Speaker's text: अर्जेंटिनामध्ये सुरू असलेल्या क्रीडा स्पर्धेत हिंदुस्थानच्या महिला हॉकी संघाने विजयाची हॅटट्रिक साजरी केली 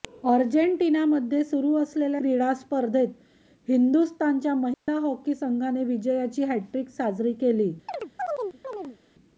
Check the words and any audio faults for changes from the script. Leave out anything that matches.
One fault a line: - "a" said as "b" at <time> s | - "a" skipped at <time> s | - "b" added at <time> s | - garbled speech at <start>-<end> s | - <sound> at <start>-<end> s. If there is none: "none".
- dropout at 4.7-4.9 s
- chirp at 7.9-9.0 s